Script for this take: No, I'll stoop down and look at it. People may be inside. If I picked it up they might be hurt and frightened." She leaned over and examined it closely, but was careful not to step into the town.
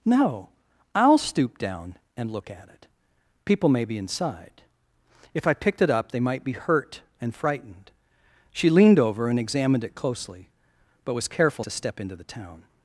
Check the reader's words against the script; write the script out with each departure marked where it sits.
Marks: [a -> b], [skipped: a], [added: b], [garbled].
No, I'll stoop down and look at it. People may be inside. If I picked it up they might be hurt and frightened." She leaned over and examined it closely, but was careful [skipped: not] to step into the town.